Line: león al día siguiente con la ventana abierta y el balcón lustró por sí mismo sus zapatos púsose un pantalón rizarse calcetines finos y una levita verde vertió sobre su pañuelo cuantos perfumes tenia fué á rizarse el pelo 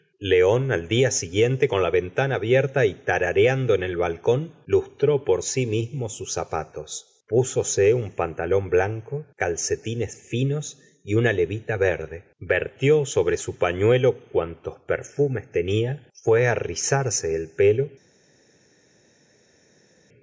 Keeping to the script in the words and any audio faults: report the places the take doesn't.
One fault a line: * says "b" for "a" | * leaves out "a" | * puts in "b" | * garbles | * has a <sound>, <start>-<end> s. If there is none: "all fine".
* puts in "tarareando en"
* says "blanco" for "rizarse"